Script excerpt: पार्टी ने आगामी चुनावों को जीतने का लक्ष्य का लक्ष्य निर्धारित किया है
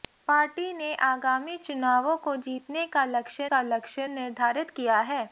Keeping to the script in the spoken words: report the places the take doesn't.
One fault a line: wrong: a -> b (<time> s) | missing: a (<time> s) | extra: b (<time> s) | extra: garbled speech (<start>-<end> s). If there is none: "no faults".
no faults